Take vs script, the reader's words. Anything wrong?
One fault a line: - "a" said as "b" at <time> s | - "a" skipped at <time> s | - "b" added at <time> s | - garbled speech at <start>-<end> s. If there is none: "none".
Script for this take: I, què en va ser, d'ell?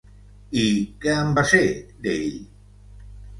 none